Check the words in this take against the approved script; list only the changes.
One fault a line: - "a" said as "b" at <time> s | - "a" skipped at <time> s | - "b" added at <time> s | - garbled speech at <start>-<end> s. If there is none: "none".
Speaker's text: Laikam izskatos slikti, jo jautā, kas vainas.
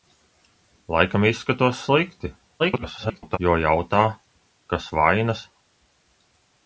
- garbled speech at 2.6-3.4 s